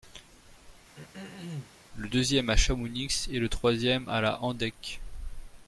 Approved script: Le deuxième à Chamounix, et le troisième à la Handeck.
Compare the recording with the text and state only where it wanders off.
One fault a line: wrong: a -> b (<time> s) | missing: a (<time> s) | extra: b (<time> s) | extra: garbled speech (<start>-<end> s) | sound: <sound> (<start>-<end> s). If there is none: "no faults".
sound: throat clearing (0.9-1.7 s)